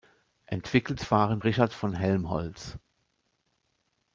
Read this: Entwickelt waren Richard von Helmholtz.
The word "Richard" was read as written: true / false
true